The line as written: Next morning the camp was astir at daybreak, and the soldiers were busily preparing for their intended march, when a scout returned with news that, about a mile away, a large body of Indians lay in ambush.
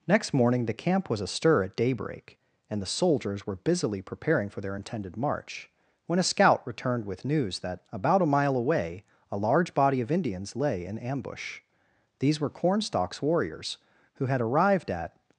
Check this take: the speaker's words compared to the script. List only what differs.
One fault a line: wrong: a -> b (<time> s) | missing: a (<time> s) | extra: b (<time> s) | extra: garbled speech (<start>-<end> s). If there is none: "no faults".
extra: These were Cornstalk's warriors who had arrived at (12.2 s)